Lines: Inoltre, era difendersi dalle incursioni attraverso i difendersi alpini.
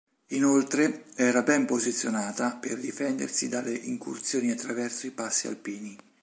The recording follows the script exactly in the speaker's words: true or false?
false